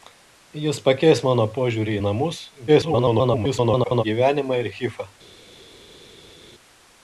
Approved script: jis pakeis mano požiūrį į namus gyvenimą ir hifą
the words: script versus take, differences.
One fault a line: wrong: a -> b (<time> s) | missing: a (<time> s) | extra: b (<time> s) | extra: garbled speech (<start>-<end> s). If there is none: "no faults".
extra: garbled speech (2.7-4.0 s)